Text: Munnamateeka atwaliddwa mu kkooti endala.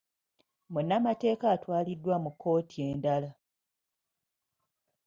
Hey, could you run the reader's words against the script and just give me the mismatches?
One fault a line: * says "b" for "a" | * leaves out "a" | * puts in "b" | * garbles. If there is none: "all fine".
all fine